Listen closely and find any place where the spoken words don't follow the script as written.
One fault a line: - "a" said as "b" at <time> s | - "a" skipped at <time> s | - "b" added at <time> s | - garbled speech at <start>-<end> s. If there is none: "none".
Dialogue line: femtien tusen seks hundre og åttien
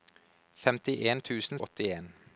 - "seks hundre" skipped at 1.6 s